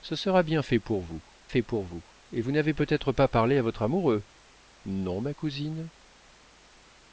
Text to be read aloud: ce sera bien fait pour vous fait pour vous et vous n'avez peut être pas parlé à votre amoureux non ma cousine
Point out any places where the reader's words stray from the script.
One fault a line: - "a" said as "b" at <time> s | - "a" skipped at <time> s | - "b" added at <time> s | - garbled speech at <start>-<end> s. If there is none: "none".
none